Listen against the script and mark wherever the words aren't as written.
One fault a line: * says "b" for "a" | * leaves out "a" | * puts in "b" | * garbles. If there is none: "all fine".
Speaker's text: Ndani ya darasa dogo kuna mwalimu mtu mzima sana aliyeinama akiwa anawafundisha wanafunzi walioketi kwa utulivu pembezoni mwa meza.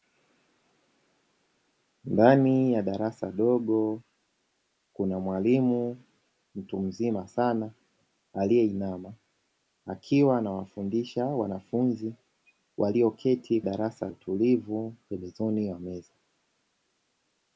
* says "darasa" for "kwa"